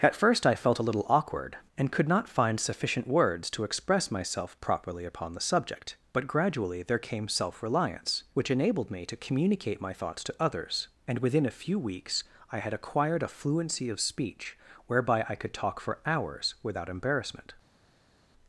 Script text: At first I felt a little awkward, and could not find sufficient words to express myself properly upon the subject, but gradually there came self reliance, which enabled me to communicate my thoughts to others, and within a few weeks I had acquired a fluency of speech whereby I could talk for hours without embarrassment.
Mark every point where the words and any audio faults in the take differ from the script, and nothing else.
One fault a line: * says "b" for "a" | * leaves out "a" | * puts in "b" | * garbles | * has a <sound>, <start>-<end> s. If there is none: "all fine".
all fine